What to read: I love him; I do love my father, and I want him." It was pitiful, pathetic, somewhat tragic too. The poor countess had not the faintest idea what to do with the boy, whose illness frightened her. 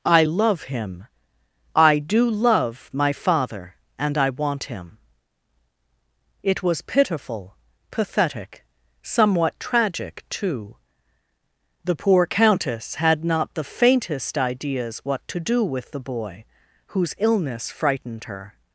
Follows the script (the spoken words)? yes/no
no